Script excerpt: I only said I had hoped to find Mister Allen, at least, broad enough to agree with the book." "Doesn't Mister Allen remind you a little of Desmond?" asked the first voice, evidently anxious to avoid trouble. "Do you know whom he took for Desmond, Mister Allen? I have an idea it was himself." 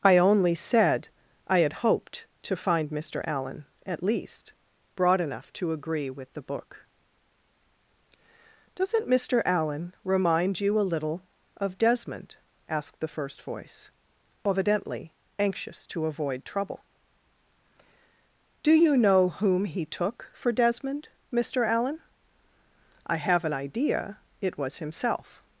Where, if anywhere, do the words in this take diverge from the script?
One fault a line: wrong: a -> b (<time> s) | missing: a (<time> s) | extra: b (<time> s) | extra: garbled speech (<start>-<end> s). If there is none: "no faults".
no faults